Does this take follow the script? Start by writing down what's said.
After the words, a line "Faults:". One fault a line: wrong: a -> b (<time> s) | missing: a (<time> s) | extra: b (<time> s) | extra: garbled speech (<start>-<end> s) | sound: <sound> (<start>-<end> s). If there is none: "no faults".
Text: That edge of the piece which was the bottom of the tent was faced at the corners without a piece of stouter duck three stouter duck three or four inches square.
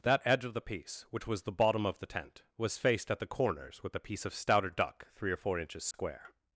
That edge of the piece which was the bottom of the tent was faced at the corners with a piece of stouter duck three or four inches square.
Faults:
wrong: without -> with (3.8 s)
missing: stouter duck three (5.3 s)
sound: dropout (5.9-5.9 s)